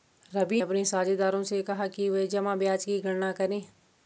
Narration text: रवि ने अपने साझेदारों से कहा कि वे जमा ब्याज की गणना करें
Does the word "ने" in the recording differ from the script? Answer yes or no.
yes